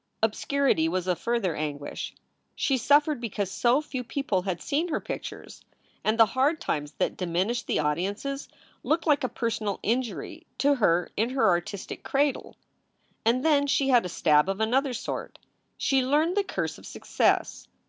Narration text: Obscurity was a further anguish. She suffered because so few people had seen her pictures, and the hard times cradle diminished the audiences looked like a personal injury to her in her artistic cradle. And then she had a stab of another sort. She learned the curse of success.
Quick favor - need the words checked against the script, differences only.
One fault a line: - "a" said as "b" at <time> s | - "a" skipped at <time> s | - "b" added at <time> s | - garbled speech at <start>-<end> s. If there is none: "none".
- "cradle" said as "that" at 6.9 s